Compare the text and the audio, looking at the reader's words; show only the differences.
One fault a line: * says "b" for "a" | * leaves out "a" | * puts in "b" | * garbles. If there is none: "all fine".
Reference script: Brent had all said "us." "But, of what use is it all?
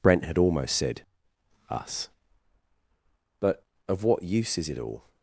* says "almost" for "all"